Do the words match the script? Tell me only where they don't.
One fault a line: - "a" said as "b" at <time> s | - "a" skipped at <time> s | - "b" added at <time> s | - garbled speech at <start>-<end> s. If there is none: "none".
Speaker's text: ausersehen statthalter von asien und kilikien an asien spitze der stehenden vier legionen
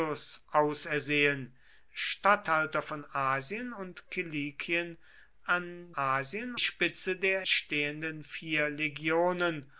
none